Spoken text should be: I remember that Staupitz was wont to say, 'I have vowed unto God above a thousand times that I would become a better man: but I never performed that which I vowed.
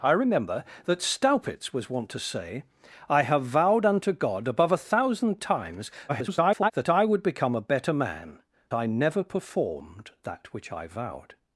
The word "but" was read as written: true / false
false